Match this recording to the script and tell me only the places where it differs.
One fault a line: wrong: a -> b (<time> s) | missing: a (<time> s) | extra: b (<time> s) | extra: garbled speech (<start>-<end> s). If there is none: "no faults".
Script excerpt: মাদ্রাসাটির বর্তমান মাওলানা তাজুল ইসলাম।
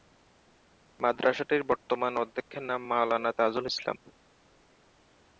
extra: অধ্যক্ষের নাম (2.2 s)